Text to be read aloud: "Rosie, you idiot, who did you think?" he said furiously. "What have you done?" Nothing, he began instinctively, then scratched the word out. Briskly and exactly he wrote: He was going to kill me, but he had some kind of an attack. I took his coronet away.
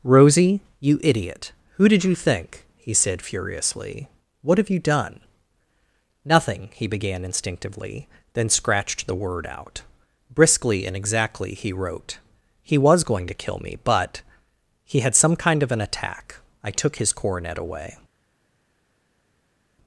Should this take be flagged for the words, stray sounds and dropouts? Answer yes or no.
no